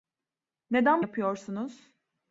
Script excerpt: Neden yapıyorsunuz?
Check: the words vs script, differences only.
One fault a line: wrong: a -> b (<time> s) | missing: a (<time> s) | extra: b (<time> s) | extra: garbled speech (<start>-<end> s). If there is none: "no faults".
no faults